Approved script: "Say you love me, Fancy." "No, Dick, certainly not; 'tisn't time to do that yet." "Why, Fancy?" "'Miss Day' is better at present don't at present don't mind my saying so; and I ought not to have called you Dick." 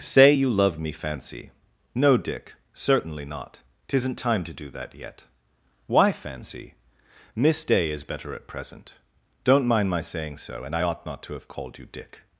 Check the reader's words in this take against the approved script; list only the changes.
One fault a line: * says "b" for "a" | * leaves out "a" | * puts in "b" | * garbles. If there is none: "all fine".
* leaves out "at present don't"